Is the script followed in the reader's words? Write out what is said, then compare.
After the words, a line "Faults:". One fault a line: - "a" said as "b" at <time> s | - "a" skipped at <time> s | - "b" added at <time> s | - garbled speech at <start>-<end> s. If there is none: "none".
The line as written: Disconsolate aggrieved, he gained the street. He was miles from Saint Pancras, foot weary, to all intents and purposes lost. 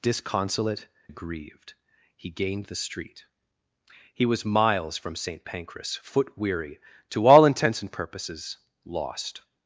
Disconsolate aggrieved, he gained the street. He was miles from Saint Pancras, foot weary, to all intents and purposes lost.
Faults:
none